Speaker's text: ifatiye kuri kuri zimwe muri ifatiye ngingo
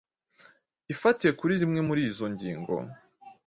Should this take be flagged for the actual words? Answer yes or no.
yes